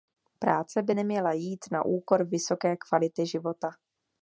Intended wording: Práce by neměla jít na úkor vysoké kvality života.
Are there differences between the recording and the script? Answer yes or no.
no